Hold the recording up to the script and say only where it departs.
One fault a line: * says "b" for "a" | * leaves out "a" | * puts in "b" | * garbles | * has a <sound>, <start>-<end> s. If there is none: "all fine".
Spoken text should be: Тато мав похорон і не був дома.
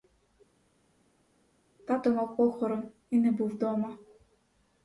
all fine